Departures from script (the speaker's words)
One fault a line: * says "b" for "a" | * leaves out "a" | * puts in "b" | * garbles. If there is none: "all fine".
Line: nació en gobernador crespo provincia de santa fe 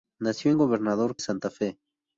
* leaves out "crespo provincia de"